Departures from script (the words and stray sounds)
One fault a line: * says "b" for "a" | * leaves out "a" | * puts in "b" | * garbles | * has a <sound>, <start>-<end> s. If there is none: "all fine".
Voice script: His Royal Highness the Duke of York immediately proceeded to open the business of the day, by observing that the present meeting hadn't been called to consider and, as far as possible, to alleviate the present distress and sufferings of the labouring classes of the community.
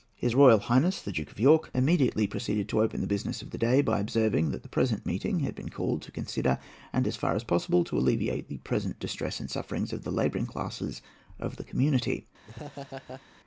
* says "had" for "hadn't"
* has a laugh, 12.5-13.2 s